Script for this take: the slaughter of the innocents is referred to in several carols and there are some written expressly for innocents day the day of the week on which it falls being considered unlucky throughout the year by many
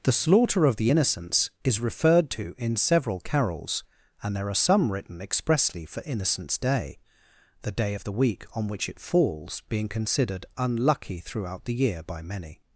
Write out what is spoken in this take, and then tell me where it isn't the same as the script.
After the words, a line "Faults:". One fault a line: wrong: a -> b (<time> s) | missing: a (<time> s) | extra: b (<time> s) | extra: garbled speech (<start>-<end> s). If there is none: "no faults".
the slaughter of the innocents is referred to in several carols and there are some written expressly for innocents day the day of the week on which it falls being considered unlucky throughout the year by many
Faults:
no faults